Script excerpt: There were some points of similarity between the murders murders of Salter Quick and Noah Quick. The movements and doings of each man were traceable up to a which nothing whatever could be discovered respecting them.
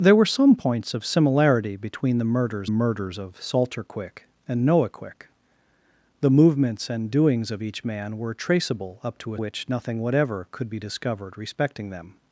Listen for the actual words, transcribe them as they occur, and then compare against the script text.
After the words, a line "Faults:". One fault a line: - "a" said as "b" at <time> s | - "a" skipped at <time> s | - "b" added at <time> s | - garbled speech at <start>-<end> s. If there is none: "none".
There were some points of similarity between the murders murders of Salter Quick and Noah Quick. The movements and doings of each man were traceable up to a which nothing whatever could be discovered respecting them.
Faults:
none